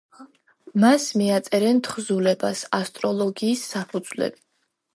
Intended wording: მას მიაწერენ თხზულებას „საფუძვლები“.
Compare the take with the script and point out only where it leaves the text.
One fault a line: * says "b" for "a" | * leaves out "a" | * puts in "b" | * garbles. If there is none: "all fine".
* puts in "ასტროლოგიის"